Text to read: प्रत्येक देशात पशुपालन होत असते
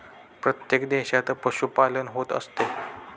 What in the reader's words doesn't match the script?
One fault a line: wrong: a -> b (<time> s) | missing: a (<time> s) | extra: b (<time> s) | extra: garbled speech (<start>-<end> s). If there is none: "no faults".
no faults